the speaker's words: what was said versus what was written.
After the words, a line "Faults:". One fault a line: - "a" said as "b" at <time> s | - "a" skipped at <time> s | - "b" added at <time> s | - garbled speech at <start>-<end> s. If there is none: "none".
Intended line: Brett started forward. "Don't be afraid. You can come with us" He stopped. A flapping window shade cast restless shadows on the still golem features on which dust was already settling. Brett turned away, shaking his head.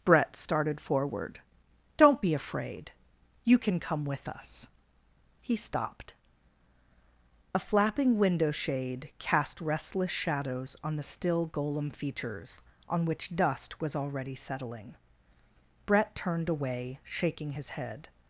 Brett started forward. "Don't be afraid. You can come with us" He stopped. A flapping window shade cast restless shadows on the still golem features on which dust was already settling. Brett turned away, shaking his head.
Faults:
none